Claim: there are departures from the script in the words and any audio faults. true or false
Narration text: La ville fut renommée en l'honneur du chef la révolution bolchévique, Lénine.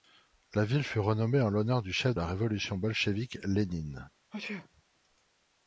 true